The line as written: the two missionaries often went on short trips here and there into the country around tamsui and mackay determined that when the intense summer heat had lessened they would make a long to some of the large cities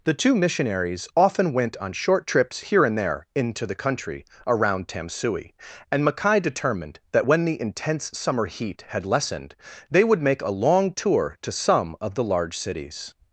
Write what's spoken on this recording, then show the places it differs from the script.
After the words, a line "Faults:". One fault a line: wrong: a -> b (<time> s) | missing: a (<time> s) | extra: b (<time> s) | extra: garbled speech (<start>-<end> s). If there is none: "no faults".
the two missionaries often went on short trips here and there into the country around tamsui and mackay determined that when the intense summer heat had lessened they would make a long tour to some of the large cities
Faults:
extra: tour (10.9 s)